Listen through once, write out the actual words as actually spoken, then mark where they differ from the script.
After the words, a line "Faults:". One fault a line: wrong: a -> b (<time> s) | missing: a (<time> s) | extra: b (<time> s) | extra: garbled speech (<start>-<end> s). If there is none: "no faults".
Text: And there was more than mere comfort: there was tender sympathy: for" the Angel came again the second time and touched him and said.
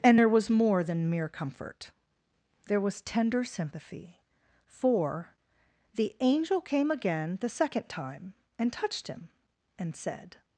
And there was more than mere comfort: there was tender sympathy: for" the Angel came again the second time and touched him and said.
Faults:
no faults